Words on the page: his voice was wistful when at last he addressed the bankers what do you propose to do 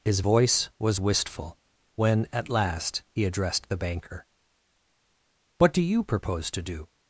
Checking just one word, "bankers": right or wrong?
wrong